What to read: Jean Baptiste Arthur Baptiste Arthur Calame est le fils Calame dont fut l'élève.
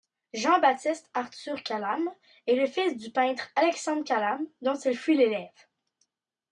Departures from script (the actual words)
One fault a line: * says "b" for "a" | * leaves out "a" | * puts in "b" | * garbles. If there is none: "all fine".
* leaves out "Baptiste Arthur"
* puts in "du peintre Alexandre"
* puts in "il"